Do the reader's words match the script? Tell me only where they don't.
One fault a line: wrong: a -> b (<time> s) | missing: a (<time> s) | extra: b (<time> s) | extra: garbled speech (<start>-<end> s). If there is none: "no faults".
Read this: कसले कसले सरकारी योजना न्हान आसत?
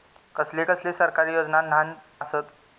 no faults